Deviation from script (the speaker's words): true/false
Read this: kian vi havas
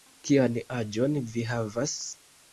true